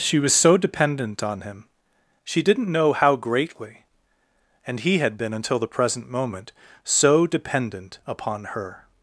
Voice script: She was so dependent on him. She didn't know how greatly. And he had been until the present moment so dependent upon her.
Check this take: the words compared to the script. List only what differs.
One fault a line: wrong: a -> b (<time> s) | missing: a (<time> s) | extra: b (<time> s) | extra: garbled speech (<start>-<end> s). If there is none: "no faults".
no faults